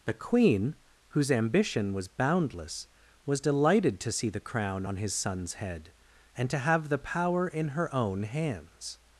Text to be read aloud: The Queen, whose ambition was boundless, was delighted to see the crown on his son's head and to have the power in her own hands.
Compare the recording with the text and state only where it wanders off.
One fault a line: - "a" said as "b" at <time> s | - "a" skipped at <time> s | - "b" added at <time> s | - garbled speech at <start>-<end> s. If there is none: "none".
none